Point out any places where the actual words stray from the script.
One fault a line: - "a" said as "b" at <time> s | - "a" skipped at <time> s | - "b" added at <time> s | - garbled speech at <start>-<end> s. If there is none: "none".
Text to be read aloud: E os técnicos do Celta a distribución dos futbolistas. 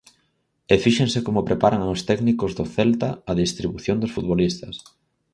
- "fíxense como preparan" added at 0.8 s